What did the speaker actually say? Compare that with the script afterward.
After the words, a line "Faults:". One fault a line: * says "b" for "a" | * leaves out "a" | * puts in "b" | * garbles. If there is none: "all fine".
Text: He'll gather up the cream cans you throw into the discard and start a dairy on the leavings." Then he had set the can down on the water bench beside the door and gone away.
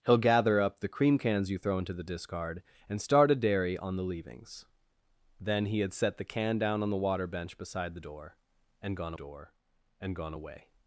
He'll gather up the cream cans you throw into the discard and start a dairy on the leavings." Then he had set the can down on the water bench beside the door and gone door and gone away.
Faults:
* puts in "door and gone"